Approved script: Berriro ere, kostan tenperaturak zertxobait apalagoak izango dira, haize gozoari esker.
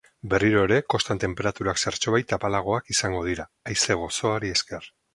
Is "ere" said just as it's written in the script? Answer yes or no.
yes